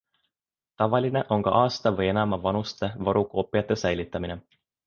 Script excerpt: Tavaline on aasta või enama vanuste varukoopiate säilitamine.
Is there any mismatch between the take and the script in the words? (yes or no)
yes